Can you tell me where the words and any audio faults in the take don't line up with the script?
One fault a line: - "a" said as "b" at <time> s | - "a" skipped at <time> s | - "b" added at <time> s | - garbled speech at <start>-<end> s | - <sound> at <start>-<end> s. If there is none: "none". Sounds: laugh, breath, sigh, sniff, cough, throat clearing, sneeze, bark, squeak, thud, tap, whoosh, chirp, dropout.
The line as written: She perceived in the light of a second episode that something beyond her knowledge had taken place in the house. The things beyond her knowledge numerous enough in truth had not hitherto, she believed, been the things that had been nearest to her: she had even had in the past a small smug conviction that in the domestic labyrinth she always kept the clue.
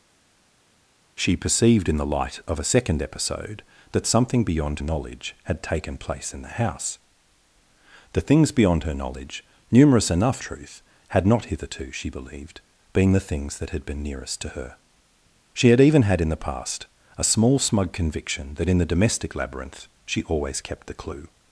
- "her" skipped at 4.8 s
- "in" skipped at 10.4 s